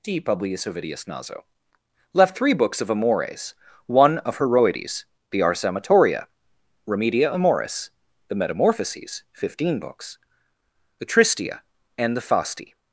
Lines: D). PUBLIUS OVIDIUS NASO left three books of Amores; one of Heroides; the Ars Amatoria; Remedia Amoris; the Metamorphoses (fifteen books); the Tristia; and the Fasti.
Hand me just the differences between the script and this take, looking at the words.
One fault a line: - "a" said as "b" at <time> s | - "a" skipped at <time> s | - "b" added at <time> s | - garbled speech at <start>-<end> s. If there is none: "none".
none